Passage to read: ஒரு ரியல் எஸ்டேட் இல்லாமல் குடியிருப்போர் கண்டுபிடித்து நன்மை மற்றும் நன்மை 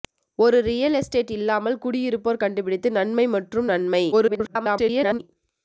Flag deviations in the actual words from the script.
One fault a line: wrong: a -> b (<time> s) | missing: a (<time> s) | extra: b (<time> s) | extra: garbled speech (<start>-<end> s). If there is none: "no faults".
extra: garbled speech (4.1-5.2 s)